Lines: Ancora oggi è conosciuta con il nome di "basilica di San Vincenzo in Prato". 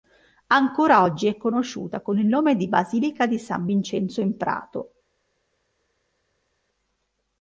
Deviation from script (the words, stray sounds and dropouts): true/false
false